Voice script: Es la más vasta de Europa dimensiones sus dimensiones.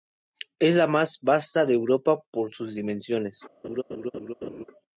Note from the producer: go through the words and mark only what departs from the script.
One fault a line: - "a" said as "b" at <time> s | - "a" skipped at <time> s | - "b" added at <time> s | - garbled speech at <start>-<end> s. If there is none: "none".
- "dimensiones" said as "por" at 2.3 s